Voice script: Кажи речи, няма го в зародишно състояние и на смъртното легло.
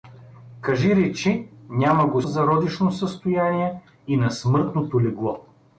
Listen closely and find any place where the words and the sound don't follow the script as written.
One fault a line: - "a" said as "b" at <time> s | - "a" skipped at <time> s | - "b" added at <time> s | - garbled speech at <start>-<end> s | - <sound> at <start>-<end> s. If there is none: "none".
none